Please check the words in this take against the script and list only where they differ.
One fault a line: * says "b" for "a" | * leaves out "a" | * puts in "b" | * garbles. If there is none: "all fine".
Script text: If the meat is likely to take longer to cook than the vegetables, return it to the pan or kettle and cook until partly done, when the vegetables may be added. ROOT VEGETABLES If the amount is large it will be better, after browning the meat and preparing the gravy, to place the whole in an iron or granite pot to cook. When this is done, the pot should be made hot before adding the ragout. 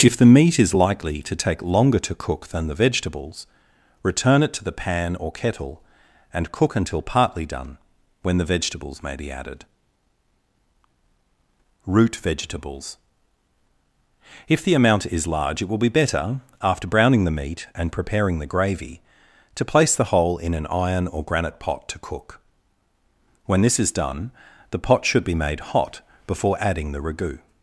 all fine